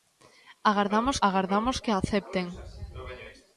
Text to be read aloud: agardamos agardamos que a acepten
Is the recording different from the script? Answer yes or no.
no